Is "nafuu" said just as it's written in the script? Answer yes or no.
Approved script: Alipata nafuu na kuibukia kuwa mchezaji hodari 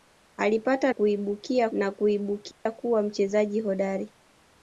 no